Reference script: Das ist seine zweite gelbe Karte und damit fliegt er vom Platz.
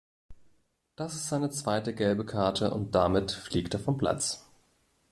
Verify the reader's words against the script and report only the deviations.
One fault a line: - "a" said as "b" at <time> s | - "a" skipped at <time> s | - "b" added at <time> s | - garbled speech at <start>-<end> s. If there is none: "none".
none